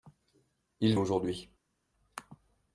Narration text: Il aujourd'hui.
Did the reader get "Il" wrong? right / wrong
right